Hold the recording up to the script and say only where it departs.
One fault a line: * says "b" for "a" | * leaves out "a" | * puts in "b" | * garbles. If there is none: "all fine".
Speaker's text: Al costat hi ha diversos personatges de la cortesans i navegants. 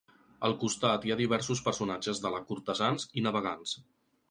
all fine